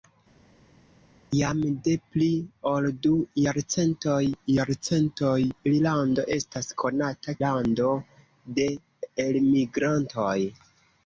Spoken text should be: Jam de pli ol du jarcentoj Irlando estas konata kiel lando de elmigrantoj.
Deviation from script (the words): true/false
true